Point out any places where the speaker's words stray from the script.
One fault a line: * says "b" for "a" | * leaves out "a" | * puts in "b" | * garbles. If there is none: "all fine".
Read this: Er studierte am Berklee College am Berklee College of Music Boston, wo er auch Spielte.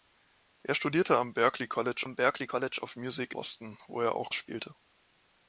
all fine